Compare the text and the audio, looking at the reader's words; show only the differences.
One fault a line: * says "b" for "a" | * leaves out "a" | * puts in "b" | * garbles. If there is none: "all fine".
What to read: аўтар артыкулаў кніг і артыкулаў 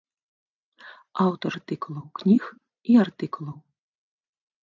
all fine